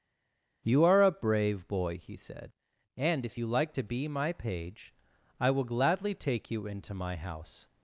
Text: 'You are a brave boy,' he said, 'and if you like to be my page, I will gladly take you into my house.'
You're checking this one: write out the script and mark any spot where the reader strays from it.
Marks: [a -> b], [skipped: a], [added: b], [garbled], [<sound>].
'You are a brave boy,' he said, 'and if you like to be my page, I will gladly take you into my house.'